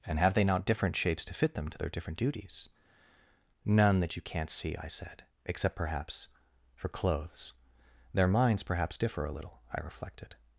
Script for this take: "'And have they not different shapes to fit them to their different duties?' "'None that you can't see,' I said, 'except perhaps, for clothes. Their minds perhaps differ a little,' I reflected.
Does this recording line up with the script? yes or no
yes